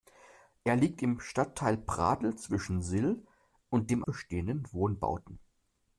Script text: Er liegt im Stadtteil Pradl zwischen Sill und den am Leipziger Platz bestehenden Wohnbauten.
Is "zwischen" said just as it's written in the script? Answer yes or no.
yes